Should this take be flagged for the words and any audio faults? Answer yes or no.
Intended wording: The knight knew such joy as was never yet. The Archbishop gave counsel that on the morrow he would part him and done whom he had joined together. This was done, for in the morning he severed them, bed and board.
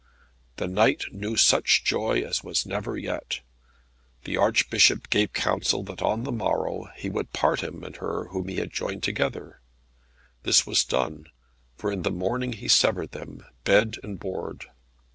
yes